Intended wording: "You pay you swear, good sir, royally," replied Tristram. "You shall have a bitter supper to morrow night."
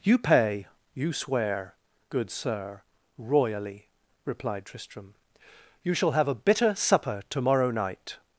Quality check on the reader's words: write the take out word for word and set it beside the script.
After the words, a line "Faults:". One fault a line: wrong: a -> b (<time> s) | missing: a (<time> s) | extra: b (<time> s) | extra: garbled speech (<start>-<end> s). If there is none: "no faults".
"You pay you swear, good sir, royally," replied Tristram. "You shall have a bitter supper to morrow night."
Faults:
no faults